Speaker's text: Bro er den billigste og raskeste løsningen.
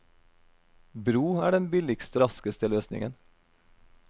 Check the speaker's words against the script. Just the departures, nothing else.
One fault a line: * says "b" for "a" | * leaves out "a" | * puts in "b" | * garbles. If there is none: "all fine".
* leaves out "og"